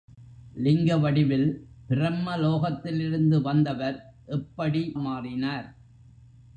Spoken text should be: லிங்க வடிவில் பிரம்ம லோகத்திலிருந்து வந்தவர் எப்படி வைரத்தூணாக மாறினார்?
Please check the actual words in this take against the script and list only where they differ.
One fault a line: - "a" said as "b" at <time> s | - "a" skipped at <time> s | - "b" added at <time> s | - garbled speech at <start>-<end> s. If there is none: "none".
- "வைரத்தூணாக" skipped at 4.8 s